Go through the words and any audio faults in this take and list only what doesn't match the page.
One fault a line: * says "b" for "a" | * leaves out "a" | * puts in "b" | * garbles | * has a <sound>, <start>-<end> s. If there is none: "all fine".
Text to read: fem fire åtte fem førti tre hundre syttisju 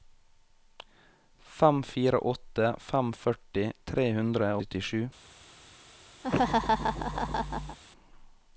* has a laugh, 6.2-7.8 s